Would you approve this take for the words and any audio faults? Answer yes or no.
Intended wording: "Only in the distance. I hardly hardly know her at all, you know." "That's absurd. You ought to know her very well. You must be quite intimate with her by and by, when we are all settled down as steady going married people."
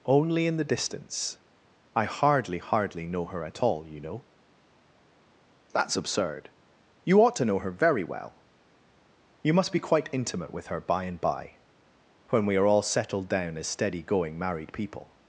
yes